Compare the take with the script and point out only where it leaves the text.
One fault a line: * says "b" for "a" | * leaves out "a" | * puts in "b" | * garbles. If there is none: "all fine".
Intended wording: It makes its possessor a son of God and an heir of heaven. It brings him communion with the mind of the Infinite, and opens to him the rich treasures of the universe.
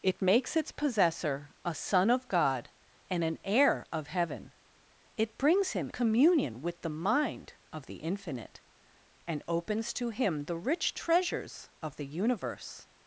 all fine